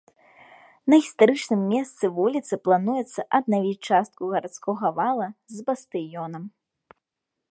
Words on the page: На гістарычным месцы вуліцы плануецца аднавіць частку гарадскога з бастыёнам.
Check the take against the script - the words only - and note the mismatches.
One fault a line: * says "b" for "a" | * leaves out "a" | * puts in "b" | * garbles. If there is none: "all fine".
* puts in "вала"